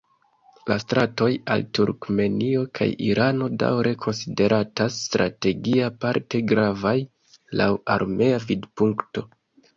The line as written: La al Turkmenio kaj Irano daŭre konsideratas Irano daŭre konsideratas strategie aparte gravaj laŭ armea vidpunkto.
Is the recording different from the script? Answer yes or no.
yes